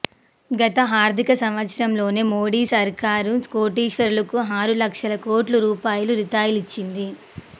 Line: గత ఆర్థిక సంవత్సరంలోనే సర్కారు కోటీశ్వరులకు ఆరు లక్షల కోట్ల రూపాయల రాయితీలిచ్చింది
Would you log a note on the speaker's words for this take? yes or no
yes